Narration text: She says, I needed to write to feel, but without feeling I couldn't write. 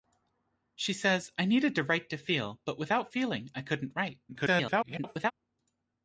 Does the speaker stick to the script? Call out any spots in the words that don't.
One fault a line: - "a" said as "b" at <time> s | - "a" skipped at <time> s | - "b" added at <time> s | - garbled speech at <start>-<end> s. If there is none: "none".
- garbled speech at 4.3-5.3 s